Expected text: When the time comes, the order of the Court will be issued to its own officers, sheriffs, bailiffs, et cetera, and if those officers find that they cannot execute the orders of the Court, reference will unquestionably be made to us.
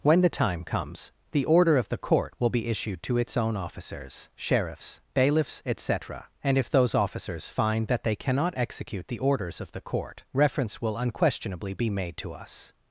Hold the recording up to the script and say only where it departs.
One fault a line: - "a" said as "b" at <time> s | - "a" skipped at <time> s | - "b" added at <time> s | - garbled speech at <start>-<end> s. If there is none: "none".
none